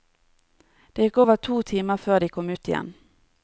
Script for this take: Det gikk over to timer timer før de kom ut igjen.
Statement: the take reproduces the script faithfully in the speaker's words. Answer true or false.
false